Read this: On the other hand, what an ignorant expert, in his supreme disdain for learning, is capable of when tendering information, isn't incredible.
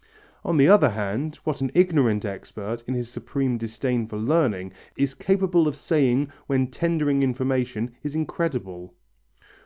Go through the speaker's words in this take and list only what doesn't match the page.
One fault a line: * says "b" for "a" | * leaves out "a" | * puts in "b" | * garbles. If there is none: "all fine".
* puts in "saying"
* says "is" for "isn't"